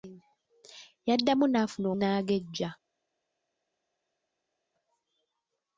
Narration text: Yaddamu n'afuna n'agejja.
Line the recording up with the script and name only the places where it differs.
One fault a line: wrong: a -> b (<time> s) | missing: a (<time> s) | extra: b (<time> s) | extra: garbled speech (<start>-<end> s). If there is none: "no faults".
no faults